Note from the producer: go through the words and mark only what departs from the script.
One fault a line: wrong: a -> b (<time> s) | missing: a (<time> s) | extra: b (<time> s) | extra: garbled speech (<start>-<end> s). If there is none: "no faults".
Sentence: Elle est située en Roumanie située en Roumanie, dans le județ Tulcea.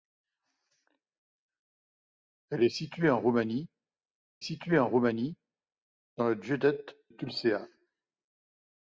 no faults